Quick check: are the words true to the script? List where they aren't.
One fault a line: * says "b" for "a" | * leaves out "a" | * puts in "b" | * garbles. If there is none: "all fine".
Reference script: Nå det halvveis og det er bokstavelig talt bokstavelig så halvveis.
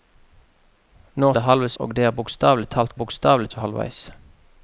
all fine